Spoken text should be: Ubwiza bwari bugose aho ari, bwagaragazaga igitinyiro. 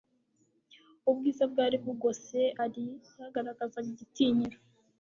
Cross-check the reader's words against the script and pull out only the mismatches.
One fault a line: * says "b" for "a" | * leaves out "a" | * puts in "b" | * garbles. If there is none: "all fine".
* leaves out "aho"